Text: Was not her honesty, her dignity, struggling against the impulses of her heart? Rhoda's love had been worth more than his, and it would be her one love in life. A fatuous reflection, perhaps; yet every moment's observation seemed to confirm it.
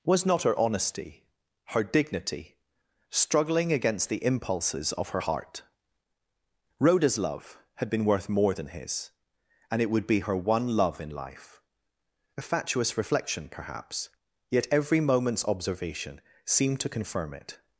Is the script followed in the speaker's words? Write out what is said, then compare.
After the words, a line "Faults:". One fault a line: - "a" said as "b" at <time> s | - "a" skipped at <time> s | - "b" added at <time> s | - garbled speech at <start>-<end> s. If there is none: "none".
Was not her honesty, her dignity, struggling against the impulses of her heart? Rhoda's love had been worth more than his, and it would be her one love in life. A fatuous reflection, perhaps; yet every moment's observation seemed to confirm it.
Faults:
none